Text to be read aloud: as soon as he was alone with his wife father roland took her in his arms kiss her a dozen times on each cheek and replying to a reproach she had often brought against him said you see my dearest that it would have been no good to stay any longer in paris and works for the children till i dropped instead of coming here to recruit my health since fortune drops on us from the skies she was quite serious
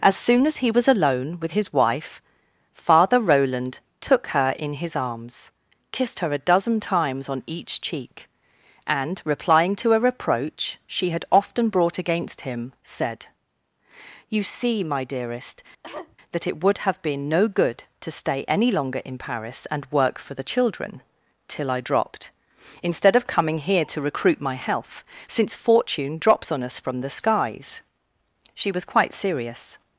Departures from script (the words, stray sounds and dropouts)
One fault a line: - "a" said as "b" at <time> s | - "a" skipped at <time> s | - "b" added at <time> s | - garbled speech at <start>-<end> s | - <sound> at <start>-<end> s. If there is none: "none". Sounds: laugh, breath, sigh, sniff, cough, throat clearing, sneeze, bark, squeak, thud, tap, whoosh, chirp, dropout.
- "kiss" said as "kissed" at 5.9 s
- cough at 15.8-16.2 s
- "works" said as "work" at 19.9 s